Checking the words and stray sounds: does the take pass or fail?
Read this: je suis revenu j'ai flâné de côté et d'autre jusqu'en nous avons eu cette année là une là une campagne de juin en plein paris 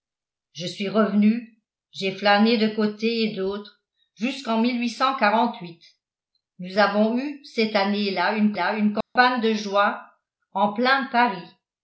fail